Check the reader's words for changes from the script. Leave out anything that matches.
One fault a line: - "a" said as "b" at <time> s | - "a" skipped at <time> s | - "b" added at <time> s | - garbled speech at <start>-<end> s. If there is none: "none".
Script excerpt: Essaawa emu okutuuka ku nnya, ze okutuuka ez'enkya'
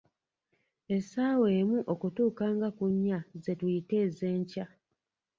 - "nga" added at 2.5 s
- "okutuuka" said as "tuyita" at 3.6 s